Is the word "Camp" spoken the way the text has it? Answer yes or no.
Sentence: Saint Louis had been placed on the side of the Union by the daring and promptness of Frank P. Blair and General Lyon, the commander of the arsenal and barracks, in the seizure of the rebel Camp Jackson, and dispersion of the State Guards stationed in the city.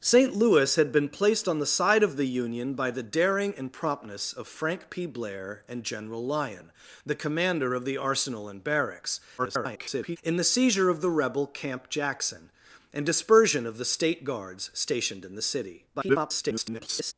yes